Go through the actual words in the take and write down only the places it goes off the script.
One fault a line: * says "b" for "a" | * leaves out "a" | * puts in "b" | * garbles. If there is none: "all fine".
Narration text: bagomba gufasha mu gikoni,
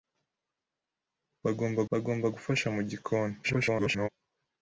* puts in "bagomba"
* garbles